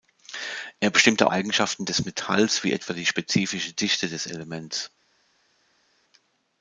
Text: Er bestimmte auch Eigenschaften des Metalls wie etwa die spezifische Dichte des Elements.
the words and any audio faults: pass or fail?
fail